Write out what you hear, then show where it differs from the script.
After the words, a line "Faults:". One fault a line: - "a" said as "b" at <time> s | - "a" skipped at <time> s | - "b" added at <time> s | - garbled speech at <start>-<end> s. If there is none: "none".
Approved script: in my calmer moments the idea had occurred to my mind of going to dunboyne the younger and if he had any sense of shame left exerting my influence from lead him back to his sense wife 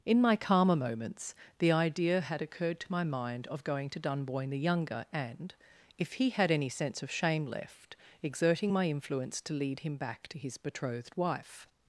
in my calmer moments the idea had occurred to my mind of going to dunboyne the younger and if he had any sense of shame left exerting my influence to lead him back to his betrothed wife
Faults:
- "from" said as "to" at 9.4 s
- "sense" said as "betrothed" at 10.6 s